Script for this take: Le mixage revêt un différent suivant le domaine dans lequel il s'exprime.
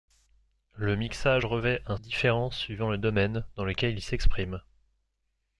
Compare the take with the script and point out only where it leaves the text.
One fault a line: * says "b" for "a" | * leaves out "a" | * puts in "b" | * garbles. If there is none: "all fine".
all fine